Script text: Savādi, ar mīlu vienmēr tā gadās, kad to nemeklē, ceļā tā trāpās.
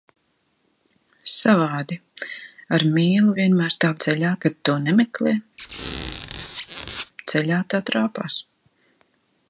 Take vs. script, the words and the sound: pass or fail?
fail